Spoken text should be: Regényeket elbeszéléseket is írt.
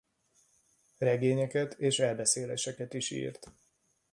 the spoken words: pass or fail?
fail